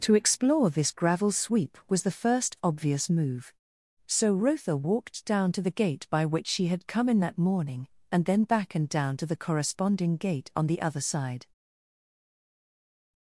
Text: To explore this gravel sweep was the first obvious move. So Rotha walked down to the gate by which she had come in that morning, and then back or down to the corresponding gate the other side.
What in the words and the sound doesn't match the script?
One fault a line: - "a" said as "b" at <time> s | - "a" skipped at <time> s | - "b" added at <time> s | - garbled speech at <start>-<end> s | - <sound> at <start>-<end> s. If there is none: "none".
- "or" said as "and" at 8.7 s
- "on" added at 10.6 s